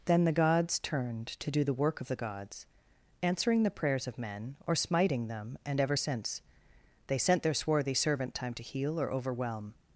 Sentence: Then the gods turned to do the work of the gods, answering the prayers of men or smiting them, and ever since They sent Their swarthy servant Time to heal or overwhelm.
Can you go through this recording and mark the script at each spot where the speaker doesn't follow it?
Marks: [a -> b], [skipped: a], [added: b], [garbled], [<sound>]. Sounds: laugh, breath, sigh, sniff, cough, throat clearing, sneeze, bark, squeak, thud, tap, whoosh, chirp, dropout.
Then the gods turned to do the work of the gods, answering the prayers of men or smiting them, and ever since They sent Their swarthy servant Time to heal or overwhelm.